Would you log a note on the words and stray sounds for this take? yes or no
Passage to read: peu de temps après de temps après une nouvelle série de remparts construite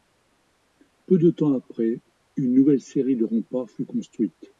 yes